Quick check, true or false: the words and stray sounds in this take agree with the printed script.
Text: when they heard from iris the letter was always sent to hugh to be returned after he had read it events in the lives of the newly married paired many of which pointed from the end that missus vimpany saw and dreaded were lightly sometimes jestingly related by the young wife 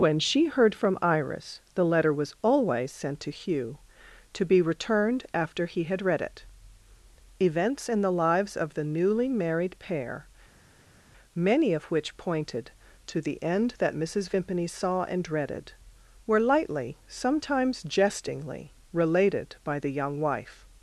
false